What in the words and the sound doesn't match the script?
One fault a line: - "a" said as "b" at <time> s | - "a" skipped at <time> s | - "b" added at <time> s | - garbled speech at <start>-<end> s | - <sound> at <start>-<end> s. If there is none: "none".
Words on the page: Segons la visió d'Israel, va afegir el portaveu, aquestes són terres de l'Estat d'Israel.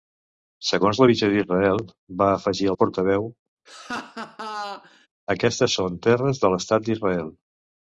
- laugh at 3.7-5.1 s